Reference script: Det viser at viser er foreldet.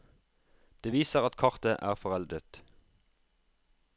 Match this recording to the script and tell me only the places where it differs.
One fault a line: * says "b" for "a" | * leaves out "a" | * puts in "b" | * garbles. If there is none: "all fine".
* says "kartet" for "viser"